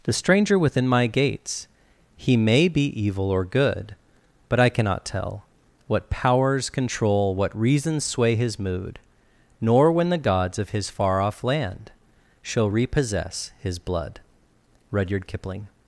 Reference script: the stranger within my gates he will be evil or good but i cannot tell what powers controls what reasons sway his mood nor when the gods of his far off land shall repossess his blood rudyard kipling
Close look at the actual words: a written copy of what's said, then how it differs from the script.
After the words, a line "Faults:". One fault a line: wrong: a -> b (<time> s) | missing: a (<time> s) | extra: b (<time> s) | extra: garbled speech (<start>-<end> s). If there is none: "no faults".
the stranger within my gates he may be evil or good but i cannot tell what powers control what reasons sway his mood nor when the gods of his far off land shall repossess his blood rudyard kipling
Faults:
wrong: will -> may (2.4 s)
wrong: controls -> control (6.7 s)